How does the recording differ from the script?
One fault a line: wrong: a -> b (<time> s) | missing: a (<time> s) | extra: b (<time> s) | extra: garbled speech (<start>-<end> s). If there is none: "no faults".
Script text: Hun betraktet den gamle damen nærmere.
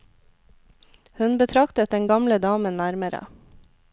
no faults